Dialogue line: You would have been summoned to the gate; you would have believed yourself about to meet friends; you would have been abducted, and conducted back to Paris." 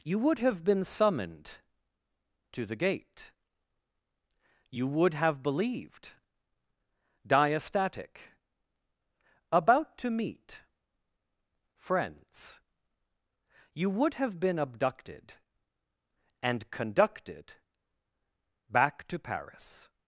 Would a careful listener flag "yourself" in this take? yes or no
yes